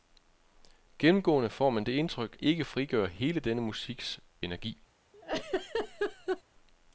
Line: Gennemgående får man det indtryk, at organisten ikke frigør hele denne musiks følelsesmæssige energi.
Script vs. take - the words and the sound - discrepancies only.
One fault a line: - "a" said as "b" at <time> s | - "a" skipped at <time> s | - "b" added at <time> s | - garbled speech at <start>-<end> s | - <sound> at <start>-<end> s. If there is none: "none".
- "at organisten" skipped at 2.4 s
- "følelsesmæssige" skipped at 4.2 s
- laugh at 5.1-6.4 s